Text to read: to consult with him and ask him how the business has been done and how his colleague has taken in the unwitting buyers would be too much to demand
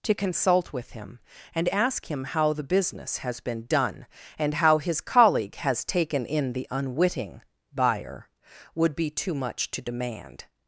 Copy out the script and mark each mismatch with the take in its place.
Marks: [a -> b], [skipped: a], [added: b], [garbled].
to consult with him and ask him how the business has been done and how his colleague has taken in the unwitting [buyers -> buyer] would be too much to demand